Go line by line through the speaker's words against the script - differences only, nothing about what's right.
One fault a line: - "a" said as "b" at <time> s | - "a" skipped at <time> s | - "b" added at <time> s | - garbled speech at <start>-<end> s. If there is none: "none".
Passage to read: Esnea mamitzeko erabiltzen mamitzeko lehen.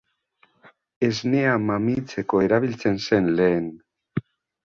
- "mamitzeko" said as "zen" at 3.1 s